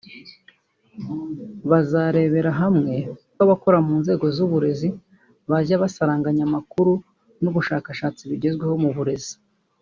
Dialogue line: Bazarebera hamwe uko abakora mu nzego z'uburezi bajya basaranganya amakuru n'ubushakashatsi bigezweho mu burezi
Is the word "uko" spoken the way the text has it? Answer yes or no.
no